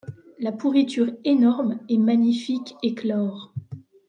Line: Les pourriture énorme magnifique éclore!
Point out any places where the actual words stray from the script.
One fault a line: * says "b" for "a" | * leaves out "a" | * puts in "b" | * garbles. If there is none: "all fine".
* says "La" for "Les"
* puts in "et"